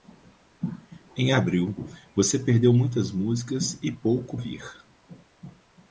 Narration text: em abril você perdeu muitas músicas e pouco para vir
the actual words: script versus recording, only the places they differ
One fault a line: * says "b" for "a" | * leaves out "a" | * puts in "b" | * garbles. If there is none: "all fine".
* leaves out "para"